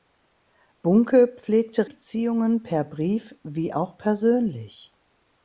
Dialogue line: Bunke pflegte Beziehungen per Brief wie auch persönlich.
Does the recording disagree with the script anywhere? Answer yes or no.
no